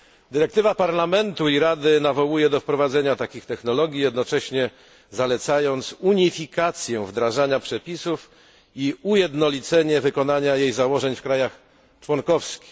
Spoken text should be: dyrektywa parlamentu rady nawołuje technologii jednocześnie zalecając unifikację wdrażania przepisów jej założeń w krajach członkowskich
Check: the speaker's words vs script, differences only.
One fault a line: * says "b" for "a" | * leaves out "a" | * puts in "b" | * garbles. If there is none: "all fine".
* puts in "i"
* puts in "do wprowadzenia takich"
* puts in "i ujednolicenie wykonania"